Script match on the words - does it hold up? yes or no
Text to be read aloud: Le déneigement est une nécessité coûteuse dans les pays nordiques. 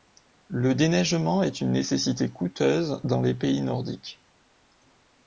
yes